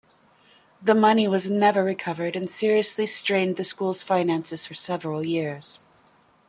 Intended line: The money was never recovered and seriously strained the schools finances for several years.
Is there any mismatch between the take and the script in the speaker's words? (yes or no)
no